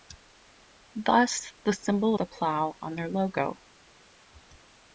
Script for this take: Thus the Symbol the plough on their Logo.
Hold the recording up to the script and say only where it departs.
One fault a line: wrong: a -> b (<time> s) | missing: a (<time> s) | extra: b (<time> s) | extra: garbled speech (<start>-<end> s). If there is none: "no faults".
no faults